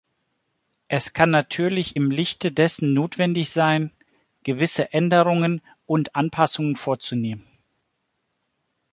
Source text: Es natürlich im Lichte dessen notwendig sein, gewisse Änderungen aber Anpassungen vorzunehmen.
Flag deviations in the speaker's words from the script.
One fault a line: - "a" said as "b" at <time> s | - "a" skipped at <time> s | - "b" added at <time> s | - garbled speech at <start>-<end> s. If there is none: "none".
- "kann" added at 1.1 s
- "aber" said as "und" at 5.9 s